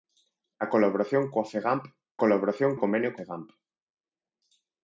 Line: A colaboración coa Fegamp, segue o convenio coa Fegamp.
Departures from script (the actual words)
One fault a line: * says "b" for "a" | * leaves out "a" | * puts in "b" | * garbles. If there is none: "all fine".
* says "colaboración" for "segue"
* leaves out "coa"